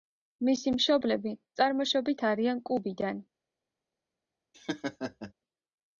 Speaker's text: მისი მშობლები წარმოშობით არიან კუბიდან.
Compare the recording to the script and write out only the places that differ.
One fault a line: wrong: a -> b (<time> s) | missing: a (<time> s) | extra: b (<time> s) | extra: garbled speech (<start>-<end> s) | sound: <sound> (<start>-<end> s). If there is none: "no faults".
sound: laugh (4.5-5.3 s)